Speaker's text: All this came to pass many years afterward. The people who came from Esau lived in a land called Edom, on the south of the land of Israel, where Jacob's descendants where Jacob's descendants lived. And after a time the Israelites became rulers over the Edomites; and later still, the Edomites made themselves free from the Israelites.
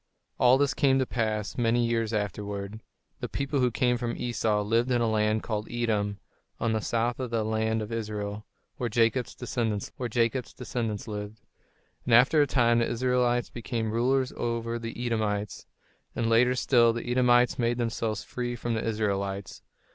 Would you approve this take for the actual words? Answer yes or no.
yes